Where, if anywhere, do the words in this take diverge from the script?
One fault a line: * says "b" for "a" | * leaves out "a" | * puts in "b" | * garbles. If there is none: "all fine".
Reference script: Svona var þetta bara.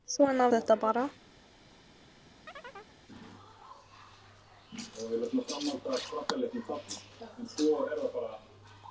* leaves out "var"